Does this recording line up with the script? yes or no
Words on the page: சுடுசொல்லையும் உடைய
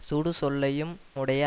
yes